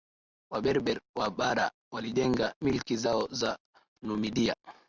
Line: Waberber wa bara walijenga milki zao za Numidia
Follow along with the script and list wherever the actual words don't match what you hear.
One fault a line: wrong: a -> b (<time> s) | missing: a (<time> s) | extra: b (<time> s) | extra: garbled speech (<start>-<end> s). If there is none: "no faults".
no faults